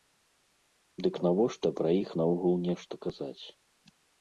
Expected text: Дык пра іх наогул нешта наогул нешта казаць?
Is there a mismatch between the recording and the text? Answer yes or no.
yes